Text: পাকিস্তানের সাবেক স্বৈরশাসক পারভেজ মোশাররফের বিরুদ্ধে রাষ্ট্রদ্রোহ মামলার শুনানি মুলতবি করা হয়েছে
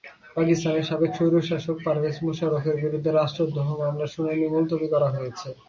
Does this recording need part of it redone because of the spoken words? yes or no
no